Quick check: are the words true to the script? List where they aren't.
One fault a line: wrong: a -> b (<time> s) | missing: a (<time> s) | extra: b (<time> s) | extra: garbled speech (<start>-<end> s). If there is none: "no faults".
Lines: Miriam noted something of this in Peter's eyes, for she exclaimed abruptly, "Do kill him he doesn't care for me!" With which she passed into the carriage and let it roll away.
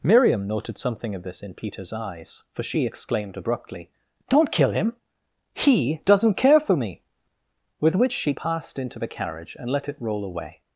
wrong: Do -> Don't (4.3 s)